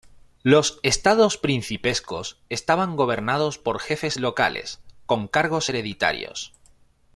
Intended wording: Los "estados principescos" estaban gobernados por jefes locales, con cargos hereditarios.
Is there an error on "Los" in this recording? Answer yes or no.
no